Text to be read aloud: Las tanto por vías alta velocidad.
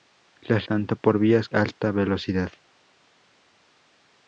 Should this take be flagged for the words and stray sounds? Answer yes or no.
no